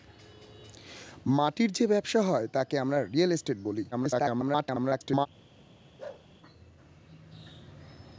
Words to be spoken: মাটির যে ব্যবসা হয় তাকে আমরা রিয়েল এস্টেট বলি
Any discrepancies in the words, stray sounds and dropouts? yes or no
yes